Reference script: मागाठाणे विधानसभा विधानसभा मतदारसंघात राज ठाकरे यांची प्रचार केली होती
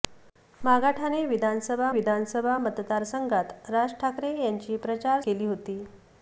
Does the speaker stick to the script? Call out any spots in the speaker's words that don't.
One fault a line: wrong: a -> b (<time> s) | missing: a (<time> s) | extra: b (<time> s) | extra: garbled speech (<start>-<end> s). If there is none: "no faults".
no faults